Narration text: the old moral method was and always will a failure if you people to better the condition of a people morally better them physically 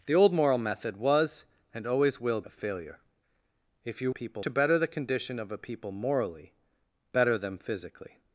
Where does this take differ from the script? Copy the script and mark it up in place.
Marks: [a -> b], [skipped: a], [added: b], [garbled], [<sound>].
the old moral method was and always will a failure if you people to better the condition of a people morally better them physically